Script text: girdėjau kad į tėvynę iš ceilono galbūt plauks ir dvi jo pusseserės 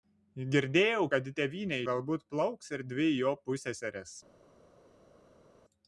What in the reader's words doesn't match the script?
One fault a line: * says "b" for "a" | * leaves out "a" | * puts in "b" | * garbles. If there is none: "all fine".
* leaves out "iš ceilono"